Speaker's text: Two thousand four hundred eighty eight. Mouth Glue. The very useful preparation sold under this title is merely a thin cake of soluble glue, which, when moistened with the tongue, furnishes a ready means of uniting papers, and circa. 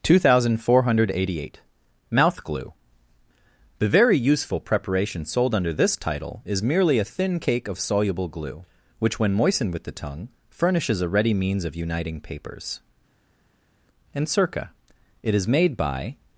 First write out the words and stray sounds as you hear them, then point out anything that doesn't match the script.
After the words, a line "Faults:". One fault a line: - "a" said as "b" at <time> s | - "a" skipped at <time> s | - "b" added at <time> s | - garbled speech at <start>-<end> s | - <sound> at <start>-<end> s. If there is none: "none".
Two thousand four hundred eighty eight. Mouth Glue. The very useful preparation sold under this title is merely a thin cake of soluble glue, which, when moistened with the tongue, furnishes a ready means of uniting papers, and circa. It is made by
Faults:
- "It is made by" added at 15.2 s